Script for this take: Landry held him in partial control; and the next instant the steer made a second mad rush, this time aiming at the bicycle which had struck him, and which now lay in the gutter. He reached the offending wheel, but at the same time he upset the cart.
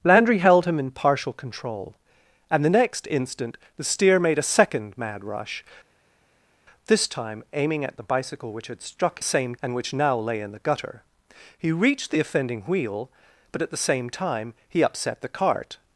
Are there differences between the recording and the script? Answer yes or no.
yes